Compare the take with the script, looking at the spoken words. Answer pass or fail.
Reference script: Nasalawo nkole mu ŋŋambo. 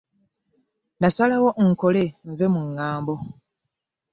fail